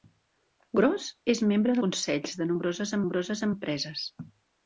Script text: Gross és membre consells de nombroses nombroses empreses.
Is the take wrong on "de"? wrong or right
right